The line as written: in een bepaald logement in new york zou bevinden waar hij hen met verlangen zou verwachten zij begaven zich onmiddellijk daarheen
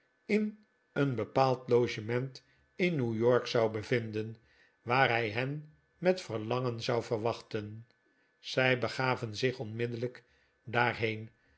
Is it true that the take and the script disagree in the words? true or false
false